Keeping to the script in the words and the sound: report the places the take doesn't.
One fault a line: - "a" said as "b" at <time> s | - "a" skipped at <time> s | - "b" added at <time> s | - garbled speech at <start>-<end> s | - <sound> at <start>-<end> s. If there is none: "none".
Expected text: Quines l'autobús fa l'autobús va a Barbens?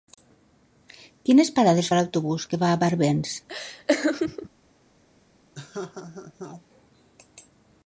- "l'autobús" said as "parades" at 1.6 s
- "que" added at 2.5 s
- laugh at 3.5-4.5 s
- laugh at 5.5-6.6 s